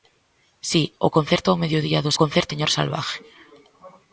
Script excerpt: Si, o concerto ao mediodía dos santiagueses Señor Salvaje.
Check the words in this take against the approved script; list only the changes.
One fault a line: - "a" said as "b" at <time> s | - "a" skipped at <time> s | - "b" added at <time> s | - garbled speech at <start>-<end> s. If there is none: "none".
- "santiagueses" said as "concerto" at 2.2 s